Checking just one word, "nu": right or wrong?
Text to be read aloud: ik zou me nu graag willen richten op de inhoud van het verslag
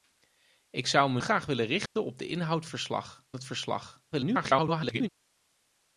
wrong